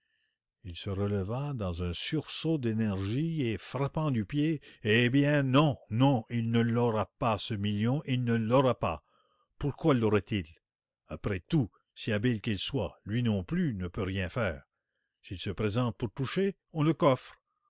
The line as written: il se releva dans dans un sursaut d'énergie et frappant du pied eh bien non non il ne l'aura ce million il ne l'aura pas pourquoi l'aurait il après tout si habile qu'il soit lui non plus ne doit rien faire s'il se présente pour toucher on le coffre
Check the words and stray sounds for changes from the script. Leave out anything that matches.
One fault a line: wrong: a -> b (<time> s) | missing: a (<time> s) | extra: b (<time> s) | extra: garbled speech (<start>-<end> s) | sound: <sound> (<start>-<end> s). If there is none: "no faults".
missing: dans (1.8 s)
extra: pas (7.2 s)
wrong: doit -> peut (13.9 s)